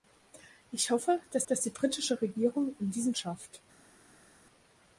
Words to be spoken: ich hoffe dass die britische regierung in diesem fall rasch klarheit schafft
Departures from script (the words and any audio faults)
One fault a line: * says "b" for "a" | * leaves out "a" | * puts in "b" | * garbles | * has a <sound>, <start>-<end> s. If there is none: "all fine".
* puts in "dass"
* leaves out "fall rasch klarheit"